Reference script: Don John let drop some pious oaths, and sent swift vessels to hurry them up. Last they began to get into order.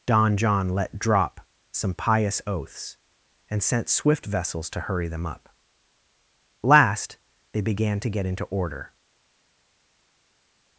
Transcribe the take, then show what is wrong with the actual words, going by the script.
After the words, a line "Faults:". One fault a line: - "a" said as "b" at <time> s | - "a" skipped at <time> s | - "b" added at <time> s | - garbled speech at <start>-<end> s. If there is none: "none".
Don John let drop some pious oaths, and sent swift vessels to hurry them up. Last they began to get into order.
Faults:
none